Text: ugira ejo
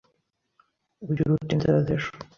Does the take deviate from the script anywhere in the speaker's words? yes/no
yes